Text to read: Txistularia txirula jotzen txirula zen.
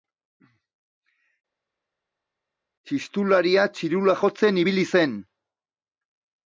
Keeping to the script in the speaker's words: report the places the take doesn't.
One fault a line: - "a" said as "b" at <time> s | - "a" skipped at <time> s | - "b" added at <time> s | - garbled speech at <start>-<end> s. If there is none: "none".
- "txirula" said as "ibili" at 4.6 s